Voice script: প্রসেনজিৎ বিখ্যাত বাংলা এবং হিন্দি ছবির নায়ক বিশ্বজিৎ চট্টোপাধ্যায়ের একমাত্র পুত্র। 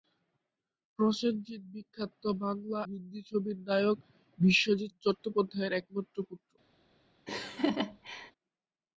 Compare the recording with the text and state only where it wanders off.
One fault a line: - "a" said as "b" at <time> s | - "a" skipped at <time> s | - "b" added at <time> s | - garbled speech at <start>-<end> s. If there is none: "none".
- "এবং" skipped at 2.8 s